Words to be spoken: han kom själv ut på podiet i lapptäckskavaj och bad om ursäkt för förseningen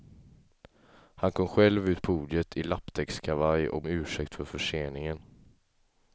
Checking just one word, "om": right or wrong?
wrong